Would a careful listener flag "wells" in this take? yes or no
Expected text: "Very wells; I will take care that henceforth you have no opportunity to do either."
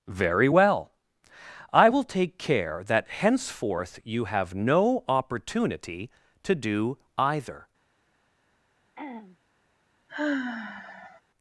yes